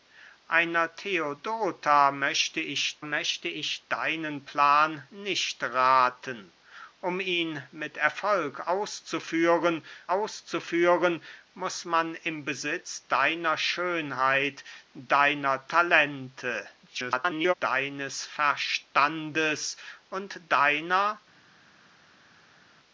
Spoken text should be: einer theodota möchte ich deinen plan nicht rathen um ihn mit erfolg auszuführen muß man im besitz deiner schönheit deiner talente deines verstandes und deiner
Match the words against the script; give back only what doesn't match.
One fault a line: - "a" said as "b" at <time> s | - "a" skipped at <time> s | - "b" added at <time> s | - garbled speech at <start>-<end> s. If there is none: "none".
- "möchte ich" added at 3.0 s
- "auszuführen" added at 10.1 s
- garbled speech at 16.9-17.5 s